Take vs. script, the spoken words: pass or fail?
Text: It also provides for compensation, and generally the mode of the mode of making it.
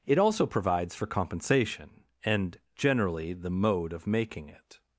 fail